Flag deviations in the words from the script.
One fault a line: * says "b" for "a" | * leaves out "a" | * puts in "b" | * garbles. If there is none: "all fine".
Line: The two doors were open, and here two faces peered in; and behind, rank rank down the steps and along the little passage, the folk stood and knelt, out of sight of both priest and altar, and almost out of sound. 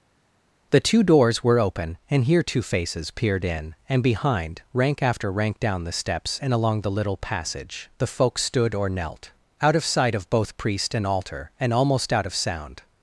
* puts in "after"
* says "or" for "and"